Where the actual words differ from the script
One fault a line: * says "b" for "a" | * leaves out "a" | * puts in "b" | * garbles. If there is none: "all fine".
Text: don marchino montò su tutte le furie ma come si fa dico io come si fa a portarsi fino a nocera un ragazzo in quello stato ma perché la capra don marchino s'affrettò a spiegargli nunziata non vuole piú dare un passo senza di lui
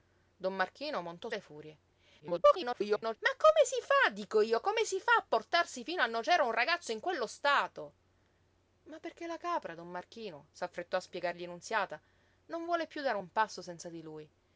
* leaves out "su tutte"
* garbles